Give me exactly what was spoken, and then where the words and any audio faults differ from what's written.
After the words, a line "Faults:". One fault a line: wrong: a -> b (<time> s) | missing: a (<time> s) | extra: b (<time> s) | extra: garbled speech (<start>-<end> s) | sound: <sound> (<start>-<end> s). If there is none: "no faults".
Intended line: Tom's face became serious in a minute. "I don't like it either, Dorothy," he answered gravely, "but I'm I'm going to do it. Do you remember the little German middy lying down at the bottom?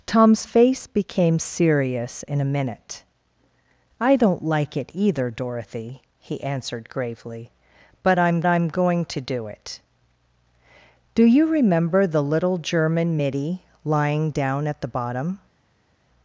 Tom's face became serious in a minute. "I don't like it either, Dorothy," he answered gravely, "but I'm I'm going to do it. Do you remember the little German middy lying down at the bottom?
Faults:
no faults